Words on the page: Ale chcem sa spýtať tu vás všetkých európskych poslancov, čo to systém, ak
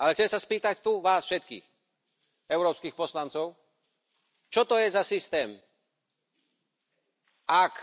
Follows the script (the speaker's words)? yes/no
no